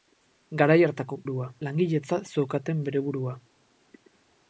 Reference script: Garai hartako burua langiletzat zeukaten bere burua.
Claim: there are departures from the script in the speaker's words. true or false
false